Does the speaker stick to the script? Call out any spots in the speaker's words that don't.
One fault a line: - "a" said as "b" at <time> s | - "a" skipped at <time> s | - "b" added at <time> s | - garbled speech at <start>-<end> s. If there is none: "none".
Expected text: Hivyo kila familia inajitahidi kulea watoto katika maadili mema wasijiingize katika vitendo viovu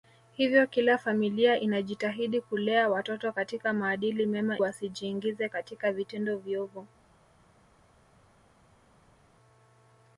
none